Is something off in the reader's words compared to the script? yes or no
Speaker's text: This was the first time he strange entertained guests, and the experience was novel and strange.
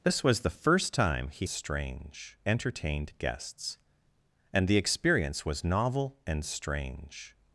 no